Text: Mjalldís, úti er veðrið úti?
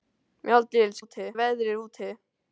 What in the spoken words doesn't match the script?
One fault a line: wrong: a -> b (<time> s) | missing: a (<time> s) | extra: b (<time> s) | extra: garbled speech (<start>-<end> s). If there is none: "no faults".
no faults